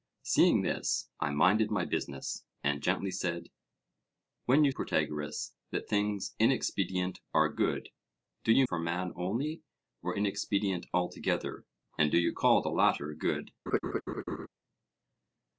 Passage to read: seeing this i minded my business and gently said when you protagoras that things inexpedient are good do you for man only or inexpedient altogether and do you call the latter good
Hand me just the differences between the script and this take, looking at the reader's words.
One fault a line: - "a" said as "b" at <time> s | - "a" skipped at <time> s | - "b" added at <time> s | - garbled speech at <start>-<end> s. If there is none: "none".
none